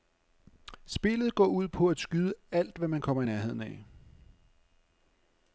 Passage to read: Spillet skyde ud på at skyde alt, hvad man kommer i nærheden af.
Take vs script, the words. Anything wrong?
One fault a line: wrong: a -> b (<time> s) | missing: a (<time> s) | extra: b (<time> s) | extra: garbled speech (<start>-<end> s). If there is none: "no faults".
wrong: skyde -> går (1.4 s)